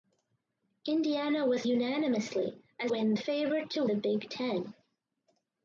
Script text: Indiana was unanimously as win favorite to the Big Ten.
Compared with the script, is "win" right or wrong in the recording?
right